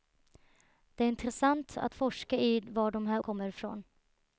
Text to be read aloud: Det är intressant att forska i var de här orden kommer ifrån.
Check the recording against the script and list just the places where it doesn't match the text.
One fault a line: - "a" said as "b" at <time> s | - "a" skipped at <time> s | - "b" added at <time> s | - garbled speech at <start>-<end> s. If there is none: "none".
- "orden" skipped at 3.2 s